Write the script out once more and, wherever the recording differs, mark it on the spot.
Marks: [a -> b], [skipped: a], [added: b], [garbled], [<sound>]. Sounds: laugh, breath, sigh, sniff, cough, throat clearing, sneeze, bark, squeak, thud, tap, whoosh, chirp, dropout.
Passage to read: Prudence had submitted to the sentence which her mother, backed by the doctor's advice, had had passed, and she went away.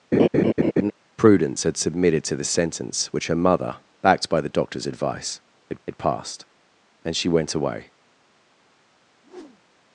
[laugh] Prudence had submitted to the sentence which her mother, backed by the doctor's advice, had had passed, and she went away. [whoosh]